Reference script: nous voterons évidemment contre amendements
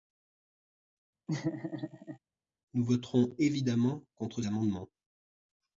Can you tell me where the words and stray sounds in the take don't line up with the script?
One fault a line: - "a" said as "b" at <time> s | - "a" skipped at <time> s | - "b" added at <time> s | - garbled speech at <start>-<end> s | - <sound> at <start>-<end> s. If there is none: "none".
- laugh at 1.3-2.2 s